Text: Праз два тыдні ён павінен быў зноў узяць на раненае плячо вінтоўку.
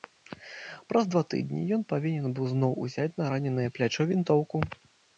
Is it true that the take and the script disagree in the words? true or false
false